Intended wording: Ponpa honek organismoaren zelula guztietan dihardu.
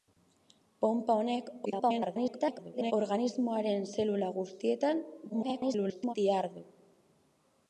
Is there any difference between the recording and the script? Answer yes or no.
yes